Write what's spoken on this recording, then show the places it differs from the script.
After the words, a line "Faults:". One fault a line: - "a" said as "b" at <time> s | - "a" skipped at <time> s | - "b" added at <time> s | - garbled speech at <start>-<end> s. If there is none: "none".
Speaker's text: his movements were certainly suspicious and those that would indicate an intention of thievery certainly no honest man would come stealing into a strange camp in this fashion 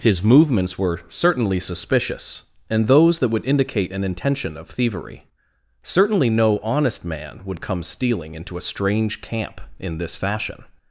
his movements were certainly suspicious and those that would indicate an intention of thievery certainly no honest man would come stealing into a strange camp in this fashion
Faults:
none